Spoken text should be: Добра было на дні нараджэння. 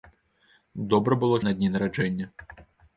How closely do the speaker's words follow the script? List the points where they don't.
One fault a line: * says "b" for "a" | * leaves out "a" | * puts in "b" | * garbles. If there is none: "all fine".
all fine